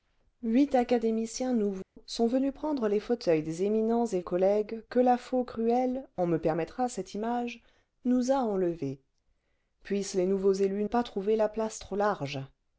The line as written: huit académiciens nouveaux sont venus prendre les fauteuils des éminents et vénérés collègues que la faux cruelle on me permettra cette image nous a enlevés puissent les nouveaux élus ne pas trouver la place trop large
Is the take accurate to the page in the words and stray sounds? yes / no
no